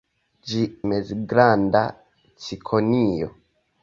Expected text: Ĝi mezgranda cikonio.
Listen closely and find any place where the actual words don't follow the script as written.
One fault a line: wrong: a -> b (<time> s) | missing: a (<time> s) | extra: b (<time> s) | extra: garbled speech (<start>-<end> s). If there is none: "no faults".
no faults